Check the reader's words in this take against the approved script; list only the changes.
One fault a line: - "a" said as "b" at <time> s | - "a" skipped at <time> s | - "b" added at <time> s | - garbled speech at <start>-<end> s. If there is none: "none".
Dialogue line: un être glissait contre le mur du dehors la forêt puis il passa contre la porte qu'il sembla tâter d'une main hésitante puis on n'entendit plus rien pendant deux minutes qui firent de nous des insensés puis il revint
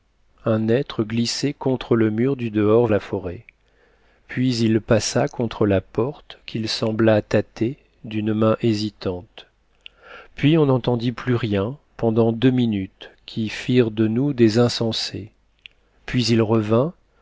none